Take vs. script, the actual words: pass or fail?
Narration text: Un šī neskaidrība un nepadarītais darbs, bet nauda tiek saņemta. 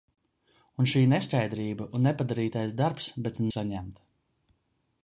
fail